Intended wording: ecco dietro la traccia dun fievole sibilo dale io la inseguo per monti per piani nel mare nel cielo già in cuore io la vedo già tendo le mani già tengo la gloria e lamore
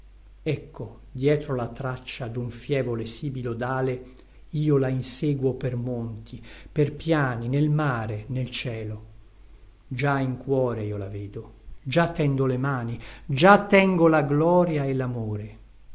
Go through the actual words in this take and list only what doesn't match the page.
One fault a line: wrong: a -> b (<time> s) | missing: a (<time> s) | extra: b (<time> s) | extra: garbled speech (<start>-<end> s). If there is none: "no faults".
no faults